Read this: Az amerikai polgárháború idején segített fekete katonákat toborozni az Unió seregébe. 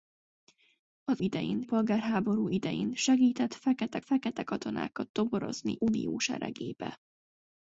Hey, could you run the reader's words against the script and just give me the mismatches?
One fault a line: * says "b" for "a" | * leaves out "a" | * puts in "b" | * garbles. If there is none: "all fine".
* says "idején" for "amerikai"
* puts in "fekete"
* leaves out "az"